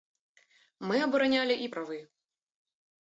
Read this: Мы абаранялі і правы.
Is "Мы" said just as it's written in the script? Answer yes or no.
yes